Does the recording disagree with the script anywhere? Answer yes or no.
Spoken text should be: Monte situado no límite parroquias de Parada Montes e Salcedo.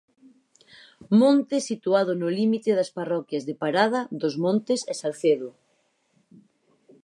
yes